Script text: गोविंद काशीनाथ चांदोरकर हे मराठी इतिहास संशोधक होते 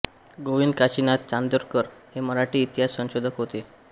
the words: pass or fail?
pass